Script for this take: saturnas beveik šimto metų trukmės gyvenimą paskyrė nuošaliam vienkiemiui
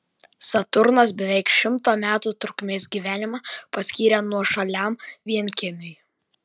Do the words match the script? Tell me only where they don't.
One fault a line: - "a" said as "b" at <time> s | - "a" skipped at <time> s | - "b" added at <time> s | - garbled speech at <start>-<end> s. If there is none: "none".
none